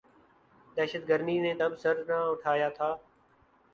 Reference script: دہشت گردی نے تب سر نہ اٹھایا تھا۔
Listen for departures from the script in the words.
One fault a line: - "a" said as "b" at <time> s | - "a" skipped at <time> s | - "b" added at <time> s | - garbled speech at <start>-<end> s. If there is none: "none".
none